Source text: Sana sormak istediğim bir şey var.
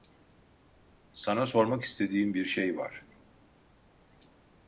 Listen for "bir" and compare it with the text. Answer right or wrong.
right